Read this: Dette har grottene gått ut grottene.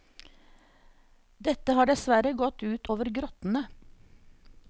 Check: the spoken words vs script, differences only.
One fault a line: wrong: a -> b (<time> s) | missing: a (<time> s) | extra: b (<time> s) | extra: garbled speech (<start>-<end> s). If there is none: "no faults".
wrong: grottene -> dessverre (1.9 s)
extra: over (2.9 s)